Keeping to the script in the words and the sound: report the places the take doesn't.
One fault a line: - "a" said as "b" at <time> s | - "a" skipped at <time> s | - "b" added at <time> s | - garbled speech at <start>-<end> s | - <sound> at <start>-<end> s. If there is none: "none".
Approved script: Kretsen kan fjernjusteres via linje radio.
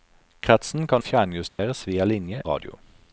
- dropout at 1.5-1.6 s